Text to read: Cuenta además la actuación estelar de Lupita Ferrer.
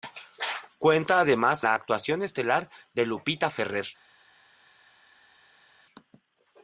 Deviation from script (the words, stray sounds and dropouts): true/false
false